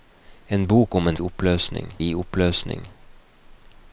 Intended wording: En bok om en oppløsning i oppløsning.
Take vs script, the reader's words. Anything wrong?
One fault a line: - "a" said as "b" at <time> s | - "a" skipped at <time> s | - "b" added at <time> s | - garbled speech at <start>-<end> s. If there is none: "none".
none